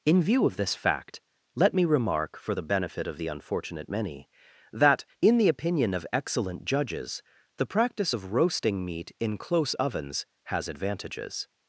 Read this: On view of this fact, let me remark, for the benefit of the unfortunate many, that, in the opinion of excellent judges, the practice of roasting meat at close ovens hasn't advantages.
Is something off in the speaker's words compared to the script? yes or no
yes